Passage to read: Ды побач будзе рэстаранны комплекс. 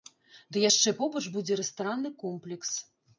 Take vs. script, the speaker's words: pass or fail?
fail